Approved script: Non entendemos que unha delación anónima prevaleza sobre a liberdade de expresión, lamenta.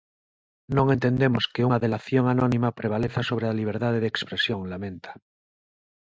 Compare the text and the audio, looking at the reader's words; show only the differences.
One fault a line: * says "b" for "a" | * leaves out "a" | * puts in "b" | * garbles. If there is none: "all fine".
all fine